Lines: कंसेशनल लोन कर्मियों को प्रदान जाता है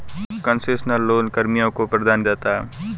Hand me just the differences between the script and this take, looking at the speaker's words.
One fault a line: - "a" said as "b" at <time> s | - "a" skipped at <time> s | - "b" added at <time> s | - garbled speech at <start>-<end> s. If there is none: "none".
none